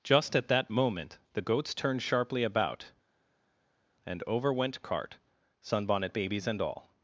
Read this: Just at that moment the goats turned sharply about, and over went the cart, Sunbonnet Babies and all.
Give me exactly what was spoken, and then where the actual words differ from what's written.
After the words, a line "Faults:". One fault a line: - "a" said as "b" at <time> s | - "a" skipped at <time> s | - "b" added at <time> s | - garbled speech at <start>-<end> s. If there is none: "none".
Just at that moment the goats turned sharply about, and over went cart, Sunbonnet Babies and all.
Faults:
- "the" skipped at 4.8 s